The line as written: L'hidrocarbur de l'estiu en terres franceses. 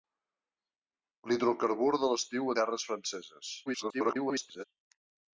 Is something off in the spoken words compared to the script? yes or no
yes